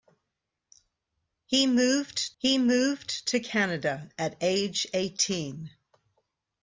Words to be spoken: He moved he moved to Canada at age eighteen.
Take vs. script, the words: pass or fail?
pass